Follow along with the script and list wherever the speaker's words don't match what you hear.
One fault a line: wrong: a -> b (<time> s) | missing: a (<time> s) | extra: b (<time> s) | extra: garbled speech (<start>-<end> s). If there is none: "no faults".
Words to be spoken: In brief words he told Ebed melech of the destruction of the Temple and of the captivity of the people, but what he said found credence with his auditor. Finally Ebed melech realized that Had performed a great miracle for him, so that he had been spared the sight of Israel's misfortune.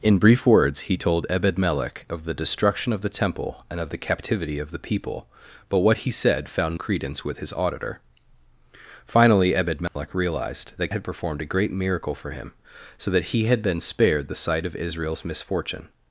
no faults